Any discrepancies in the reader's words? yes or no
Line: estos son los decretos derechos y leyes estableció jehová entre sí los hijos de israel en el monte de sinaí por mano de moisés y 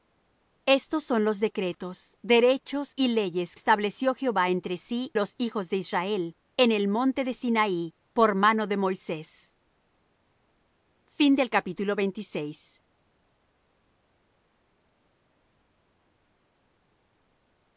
no